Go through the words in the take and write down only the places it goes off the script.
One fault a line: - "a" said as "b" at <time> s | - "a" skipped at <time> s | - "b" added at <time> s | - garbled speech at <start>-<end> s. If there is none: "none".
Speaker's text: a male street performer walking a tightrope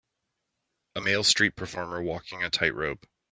none